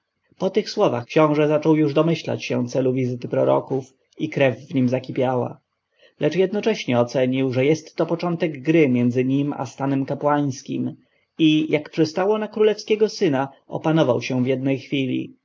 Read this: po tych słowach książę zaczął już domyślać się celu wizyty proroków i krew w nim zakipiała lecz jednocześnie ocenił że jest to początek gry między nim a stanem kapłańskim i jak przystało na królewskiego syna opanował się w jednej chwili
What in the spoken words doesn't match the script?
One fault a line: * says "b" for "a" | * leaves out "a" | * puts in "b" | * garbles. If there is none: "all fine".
all fine